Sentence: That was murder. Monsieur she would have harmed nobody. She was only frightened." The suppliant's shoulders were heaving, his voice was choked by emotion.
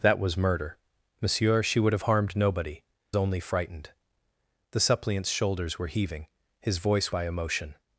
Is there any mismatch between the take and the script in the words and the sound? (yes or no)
yes